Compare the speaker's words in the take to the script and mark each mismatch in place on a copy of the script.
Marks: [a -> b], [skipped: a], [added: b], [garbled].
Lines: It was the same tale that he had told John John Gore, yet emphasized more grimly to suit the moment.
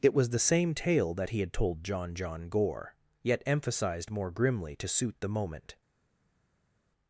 It was the same tale that he had told John John Gore, yet emphasized more grimly to suit the moment.